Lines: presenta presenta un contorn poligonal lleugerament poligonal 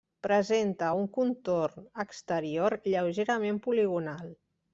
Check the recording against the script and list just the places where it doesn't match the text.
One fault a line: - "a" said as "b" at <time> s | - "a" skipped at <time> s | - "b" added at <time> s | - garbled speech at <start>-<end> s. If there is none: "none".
- "presenta" skipped at 0.9 s
- "poligonal" said as "exterior" at 2.0 s